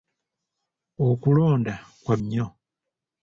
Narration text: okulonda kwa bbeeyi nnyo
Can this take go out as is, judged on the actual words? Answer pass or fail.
fail